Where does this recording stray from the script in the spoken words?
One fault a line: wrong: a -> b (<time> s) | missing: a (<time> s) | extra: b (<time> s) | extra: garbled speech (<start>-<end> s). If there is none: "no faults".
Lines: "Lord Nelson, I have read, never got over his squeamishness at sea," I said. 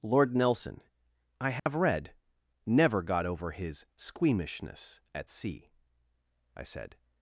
no faults